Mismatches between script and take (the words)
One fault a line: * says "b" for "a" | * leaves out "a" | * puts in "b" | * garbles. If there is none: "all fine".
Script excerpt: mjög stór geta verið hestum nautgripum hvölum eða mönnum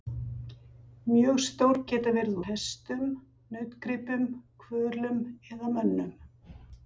all fine